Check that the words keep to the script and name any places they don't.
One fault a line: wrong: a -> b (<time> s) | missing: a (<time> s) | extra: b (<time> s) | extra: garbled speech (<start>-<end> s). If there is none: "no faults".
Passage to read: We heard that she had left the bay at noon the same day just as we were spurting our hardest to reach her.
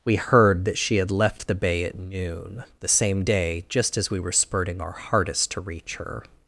no faults